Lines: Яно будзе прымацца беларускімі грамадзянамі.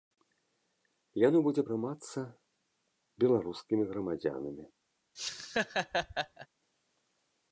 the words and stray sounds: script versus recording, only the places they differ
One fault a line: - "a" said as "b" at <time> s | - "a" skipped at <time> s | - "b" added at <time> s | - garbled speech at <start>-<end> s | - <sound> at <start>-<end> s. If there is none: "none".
- laugh at 5.1-6.5 s